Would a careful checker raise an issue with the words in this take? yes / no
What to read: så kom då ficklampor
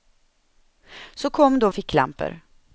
no